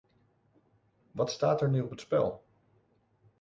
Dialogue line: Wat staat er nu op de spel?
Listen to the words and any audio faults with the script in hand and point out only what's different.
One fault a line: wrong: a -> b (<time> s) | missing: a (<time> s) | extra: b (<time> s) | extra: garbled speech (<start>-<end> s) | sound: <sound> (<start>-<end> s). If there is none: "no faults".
wrong: de -> het (1.9 s)